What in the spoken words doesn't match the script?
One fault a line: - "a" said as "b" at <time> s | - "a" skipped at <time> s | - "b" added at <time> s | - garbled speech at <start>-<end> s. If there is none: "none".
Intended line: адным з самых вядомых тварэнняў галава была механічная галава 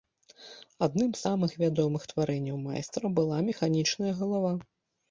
- "галава" said as "майстра" at 2.7 s